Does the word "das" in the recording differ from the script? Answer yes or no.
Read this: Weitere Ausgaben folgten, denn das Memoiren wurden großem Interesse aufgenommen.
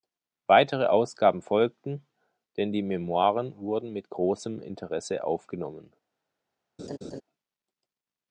yes